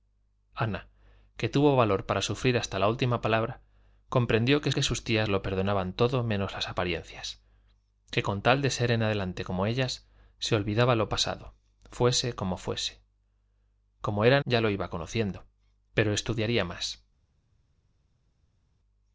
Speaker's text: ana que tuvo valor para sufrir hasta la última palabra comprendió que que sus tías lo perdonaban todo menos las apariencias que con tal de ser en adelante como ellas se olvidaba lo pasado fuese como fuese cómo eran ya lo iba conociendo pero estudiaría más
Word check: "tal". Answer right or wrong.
right